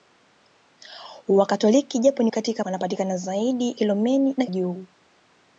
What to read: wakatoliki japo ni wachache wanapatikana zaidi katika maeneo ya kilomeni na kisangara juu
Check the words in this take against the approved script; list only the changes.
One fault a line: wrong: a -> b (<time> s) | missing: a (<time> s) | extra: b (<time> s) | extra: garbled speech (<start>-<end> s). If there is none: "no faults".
wrong: wachache -> katika (2.3 s)
missing: katika maeneo ya (3.7 s)
missing: kisangara (4.4 s)